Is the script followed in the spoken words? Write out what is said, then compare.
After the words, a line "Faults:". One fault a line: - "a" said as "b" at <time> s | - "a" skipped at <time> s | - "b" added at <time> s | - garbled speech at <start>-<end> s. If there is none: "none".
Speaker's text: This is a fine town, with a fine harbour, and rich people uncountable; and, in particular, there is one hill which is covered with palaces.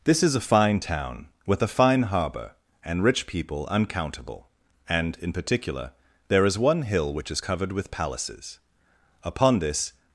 This is a fine town, with a fine harbour, and rich people uncountable; and, in particular, there is one hill which is covered with palaces. Upon this
Faults:
- "Upon this" added at 9.2 s